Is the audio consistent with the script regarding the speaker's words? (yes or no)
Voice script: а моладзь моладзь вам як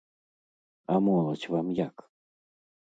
no